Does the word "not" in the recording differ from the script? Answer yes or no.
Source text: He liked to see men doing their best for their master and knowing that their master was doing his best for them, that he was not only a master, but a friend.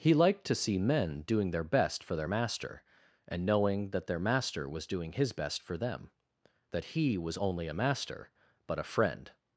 yes